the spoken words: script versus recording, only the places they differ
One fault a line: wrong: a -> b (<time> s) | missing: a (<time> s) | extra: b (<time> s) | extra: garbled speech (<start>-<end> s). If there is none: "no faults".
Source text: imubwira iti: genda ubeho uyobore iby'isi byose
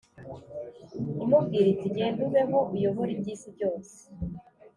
no faults